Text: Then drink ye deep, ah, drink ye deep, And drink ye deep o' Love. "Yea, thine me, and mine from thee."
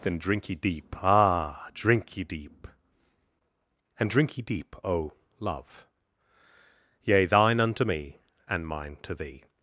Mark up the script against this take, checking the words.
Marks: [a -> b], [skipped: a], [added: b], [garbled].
Then drink ye deep, ah, drink ye deep, And drink ye deep o' Love. "Yea, thine [added: unto] me, and mine [from -> to] thee."